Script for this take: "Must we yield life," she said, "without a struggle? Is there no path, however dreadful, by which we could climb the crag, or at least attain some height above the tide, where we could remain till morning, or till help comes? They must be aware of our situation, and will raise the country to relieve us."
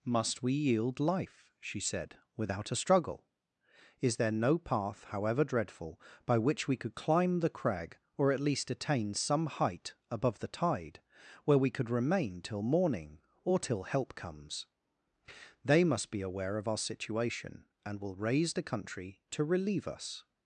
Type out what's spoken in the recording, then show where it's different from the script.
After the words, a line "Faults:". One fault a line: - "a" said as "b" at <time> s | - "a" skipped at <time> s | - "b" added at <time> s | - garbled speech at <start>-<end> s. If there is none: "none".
"Must we yield life," she said, "without a struggle? Is there no path, however dreadful, by which we could climb the crag, or at least attain some height above the tide, where we could remain till morning, or till help comes? They must be aware of our situation, and will raise the country to relieve us."
Faults:
none